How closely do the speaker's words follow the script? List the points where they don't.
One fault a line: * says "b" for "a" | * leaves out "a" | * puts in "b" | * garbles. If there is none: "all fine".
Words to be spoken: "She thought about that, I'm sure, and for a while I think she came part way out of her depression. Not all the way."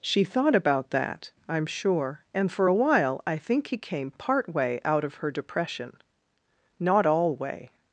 * says "he" for "she"
* leaves out "the"